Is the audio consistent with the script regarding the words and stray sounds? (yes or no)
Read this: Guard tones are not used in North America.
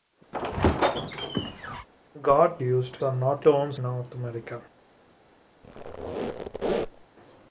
no